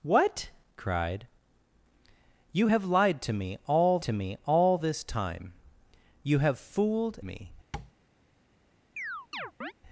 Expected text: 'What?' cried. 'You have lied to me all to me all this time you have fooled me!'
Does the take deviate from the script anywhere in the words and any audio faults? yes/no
yes